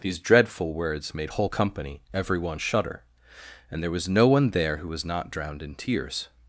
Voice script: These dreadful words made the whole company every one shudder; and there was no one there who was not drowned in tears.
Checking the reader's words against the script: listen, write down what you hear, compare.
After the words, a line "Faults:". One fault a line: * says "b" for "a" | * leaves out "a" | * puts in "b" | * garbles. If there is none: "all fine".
These dreadful words made whole company every one shudder; and there was no one there who was not drowned in tears.
Faults:
* leaves out "the"